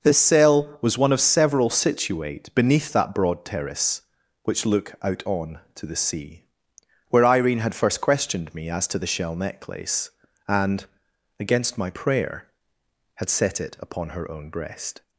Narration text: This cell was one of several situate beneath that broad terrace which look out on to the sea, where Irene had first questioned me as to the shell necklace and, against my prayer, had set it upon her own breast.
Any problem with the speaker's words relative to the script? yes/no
no